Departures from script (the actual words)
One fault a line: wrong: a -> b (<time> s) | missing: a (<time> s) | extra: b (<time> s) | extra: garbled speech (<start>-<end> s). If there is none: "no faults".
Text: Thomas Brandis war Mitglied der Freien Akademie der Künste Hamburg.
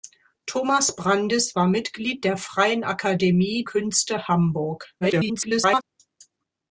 missing: der (3.6 s)
extra: garbled speech (5.0-5.8 s)